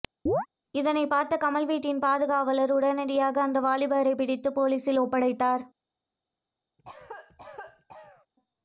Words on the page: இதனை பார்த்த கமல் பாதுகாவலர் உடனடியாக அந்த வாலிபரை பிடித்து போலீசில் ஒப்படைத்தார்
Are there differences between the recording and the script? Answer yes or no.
yes